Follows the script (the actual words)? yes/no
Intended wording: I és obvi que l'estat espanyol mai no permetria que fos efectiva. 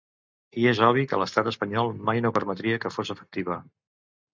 yes